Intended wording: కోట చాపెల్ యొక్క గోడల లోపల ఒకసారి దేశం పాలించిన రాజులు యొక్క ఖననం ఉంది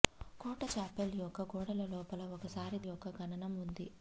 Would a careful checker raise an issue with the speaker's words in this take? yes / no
yes